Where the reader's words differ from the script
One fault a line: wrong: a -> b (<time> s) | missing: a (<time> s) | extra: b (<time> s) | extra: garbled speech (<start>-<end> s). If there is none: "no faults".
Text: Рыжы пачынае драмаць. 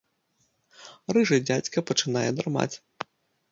extra: дзядзька (1.4 s)